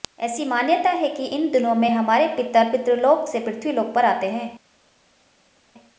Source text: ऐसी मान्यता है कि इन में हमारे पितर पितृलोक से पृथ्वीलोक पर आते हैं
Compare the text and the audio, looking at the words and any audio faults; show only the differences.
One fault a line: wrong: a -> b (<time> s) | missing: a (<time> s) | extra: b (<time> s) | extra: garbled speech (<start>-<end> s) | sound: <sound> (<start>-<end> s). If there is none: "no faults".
extra: दिनों (1.5 s)